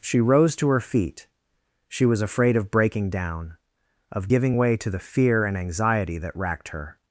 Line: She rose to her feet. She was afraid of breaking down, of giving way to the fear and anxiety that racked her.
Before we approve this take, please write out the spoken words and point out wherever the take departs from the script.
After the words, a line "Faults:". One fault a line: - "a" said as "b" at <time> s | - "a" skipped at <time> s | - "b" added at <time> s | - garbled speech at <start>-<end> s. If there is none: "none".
She rose to her feet. She was afraid of breaking down, of giving way to the fear and anxiety that racked her.
Faults:
none